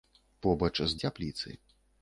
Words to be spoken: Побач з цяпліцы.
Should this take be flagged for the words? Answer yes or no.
no